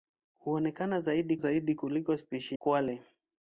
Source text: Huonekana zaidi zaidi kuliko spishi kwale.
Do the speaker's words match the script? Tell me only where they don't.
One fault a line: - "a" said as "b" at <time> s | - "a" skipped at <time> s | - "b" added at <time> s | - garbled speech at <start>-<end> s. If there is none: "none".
none